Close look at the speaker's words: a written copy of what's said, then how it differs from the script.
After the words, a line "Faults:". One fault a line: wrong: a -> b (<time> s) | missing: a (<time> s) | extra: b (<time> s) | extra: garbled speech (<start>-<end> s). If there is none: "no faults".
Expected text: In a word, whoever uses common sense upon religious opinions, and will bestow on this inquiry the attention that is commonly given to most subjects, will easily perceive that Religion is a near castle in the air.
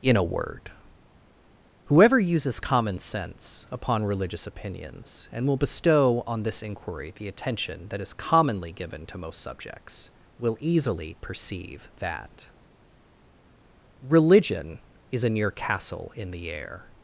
In a word, whoever uses common sense upon religious opinions, and will bestow on this inquiry the attention that is commonly given to most subjects, will easily perceive that Religion is a near castle in the air.
Faults:
no faults